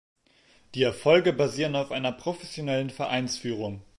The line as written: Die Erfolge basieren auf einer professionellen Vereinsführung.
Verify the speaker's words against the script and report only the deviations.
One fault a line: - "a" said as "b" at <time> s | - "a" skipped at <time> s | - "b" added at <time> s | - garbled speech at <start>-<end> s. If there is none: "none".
none